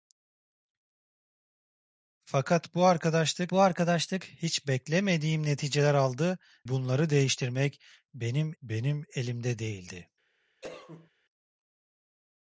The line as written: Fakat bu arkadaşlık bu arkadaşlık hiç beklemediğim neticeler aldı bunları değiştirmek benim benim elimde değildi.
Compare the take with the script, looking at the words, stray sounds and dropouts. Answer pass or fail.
fail